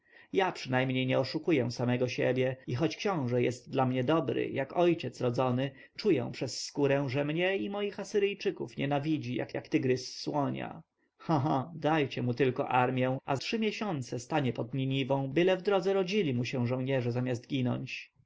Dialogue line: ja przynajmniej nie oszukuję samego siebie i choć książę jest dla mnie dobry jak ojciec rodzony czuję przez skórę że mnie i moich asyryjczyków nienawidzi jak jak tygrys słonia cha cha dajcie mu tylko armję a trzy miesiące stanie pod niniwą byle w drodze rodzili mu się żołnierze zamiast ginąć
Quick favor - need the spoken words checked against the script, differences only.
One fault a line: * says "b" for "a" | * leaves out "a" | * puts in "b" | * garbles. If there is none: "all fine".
all fine